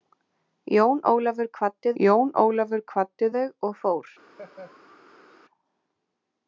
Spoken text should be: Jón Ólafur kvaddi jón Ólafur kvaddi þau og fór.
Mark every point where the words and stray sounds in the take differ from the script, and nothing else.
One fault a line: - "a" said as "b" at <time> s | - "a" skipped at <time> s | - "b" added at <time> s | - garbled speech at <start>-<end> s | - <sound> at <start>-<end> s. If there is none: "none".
- laugh at 4.3-5.4 s